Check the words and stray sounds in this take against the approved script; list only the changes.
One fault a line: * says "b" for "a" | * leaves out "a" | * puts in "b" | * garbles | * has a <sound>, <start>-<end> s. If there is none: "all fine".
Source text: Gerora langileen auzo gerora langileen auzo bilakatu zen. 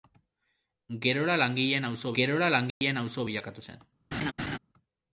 * has a dropout, 2.7-2.8 s
* has a laugh, 4.1-4.6 s